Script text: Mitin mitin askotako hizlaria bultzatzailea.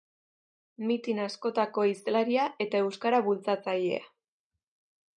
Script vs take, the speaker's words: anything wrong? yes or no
yes